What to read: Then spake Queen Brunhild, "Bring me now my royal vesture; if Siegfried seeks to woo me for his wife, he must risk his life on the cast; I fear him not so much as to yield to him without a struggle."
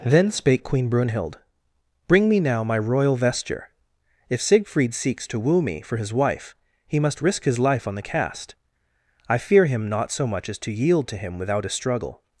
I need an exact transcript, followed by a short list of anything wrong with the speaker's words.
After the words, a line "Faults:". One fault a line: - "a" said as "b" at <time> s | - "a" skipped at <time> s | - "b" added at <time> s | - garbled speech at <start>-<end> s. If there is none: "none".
Then spake Queen Brunhild, "Bring me now my royal vesture; if Siegfried seeks to woo me for his wife, he must risk his life on the cast; I fear him not so much as to yield to him without a struggle."
Faults:
none